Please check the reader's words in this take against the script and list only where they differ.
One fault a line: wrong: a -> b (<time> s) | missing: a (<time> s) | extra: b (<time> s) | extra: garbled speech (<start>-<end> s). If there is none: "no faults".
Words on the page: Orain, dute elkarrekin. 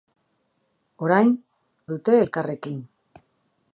no faults